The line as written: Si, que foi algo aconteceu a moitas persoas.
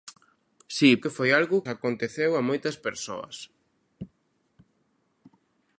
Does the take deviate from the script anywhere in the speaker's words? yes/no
no